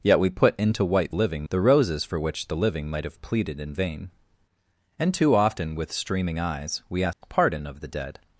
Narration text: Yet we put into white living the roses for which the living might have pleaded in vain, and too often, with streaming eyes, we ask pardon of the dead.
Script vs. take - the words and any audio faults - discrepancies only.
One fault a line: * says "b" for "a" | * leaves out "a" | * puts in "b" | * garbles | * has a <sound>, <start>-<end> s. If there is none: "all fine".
* has a dropout, 7.1-7.2 s